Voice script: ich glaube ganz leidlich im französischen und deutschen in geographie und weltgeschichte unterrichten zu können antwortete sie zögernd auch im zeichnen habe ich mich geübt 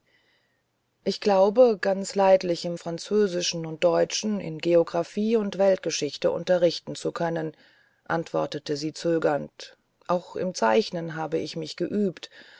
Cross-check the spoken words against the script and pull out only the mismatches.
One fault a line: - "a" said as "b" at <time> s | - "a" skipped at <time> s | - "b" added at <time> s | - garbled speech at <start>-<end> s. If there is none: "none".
none